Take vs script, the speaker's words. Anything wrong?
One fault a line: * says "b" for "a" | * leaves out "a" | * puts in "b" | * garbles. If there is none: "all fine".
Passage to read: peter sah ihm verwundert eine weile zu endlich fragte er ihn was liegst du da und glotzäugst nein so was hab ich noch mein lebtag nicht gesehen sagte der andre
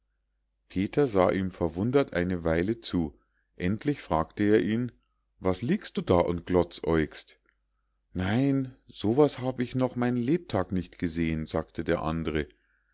all fine